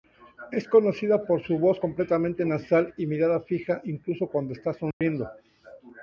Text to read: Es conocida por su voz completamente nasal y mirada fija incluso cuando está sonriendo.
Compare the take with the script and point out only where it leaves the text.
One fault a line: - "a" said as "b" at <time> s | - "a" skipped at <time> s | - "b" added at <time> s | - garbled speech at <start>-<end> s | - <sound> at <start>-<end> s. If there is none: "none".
- dropout at 4.9-5.0 s